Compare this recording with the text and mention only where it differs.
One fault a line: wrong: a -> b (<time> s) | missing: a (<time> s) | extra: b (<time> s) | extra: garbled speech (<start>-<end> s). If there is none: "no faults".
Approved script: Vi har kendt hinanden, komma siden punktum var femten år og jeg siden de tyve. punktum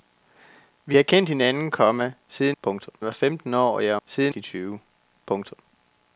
no faults